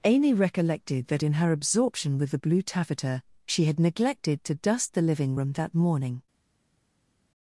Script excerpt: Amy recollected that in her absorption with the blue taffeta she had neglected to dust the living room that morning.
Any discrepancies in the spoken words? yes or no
no